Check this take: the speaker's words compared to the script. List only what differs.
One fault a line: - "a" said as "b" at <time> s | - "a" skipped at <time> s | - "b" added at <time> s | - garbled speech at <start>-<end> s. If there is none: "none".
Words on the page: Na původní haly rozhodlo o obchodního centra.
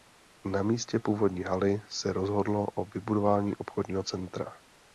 - "místě" added at 0.6 s
- "se" added at 1.9 s
- "vybudování" added at 2.9 s